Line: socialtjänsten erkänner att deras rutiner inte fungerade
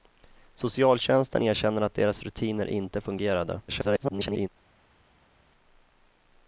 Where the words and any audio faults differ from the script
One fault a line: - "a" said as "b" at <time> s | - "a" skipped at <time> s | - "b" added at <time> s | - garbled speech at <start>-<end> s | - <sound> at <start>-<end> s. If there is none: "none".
- garbled speech at 3.7-4.5 s